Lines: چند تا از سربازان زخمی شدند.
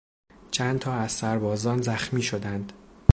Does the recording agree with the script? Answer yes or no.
yes